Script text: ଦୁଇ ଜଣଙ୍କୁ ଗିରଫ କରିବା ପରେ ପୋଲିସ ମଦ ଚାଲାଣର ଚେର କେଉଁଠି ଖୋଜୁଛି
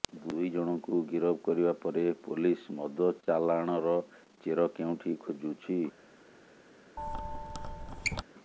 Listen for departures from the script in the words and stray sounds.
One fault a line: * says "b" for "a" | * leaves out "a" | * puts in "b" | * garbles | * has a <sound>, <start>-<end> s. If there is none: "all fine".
* has a squeak, 7.0-8.2 s